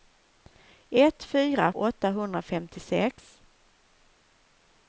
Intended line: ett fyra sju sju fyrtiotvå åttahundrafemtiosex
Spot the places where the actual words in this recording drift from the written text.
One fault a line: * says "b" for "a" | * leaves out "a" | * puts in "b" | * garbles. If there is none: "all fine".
* leaves out "sju sju fyrtiotvå"